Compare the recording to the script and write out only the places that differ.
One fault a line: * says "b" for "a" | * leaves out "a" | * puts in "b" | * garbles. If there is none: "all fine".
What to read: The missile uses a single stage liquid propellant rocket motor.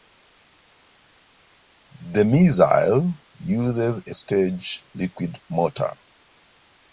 * leaves out "single"
* leaves out "propellant rocket"